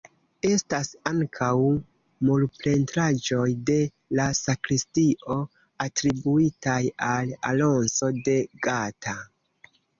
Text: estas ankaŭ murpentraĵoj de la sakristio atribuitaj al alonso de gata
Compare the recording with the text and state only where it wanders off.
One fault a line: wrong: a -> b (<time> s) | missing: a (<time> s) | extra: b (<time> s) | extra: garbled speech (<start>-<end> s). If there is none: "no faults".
no faults